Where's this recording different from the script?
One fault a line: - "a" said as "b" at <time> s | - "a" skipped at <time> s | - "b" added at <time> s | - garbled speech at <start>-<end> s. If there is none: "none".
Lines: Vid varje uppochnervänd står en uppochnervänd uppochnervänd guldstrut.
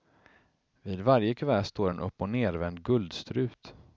- "uppochnervänd" said as "kuvert" at 1.3 s
- "uppochnervänd" skipped at 2.8 s